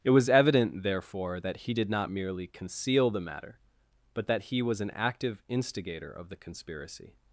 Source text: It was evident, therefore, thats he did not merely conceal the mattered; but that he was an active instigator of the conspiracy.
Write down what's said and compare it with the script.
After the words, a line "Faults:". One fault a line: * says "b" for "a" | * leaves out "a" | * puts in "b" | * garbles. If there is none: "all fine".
It was evident, therefore, that he did not merely conceal the matter; but that he was an active instigator of the conspiracy.
Faults:
* says "that" for "thats"
* says "matter" for "mattered"